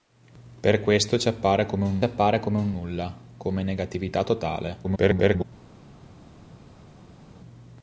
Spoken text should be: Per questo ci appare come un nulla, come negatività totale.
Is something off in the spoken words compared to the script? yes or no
yes